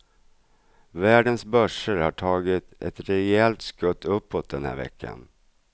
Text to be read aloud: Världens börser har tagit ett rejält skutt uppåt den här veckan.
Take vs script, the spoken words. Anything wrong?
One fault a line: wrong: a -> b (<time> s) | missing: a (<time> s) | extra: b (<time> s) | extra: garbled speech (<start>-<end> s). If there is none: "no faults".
no faults